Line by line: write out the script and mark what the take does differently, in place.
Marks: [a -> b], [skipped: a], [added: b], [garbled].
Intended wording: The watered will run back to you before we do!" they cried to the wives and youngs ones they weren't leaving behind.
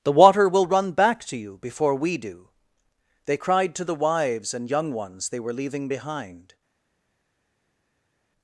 The [watered -> water] will run back to you before we do!" they cried to the wives and [youngs -> young] ones they [weren't -> were] leaving behind.